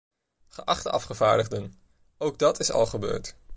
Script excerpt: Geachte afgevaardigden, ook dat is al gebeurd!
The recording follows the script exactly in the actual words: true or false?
true